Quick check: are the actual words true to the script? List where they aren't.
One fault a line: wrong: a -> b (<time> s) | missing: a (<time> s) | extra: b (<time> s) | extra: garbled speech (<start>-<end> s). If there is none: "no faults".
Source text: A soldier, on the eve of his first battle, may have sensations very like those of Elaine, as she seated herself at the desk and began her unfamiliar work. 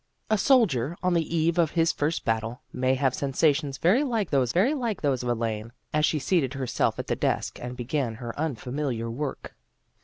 extra: very like those (4.5 s)